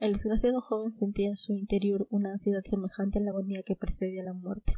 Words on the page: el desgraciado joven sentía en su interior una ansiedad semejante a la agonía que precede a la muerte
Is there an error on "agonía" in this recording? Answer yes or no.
no